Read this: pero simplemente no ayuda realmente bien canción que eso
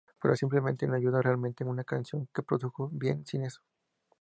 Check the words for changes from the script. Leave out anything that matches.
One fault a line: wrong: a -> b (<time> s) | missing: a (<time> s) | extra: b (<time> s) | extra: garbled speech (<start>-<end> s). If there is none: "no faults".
wrong: bien -> una (1.6 s)
extra: produjo bien sin (2.4 s)